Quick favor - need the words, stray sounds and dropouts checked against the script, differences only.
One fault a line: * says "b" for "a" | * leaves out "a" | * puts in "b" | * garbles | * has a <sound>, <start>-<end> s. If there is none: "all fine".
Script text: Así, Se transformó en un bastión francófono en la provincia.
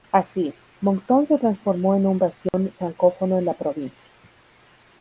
* puts in "Moncton"
* has a dropout, 2.5-2.5 s